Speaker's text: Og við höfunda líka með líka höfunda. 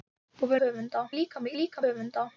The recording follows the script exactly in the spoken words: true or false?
true